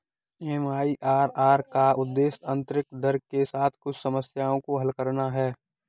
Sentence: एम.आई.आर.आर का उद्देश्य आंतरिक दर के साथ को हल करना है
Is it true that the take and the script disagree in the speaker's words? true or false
true